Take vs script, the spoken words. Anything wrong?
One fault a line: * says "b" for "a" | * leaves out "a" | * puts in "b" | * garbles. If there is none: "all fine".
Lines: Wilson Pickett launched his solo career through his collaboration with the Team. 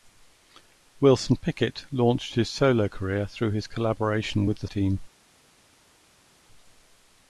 all fine